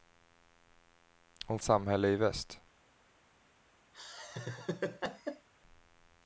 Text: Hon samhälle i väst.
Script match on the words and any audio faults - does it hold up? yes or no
no